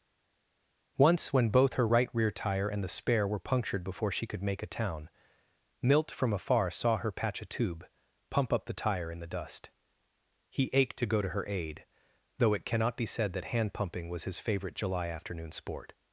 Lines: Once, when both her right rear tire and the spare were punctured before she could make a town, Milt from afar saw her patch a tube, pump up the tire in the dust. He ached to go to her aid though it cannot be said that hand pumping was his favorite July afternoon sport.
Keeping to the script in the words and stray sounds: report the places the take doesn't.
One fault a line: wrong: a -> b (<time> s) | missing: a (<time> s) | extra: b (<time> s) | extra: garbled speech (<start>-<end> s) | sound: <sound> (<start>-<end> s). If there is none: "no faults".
no faults